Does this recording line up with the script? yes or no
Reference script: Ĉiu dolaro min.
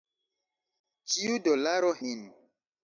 yes